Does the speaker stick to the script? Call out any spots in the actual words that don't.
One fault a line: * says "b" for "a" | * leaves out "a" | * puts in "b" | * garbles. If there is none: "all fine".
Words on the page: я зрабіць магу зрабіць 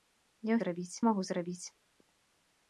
all fine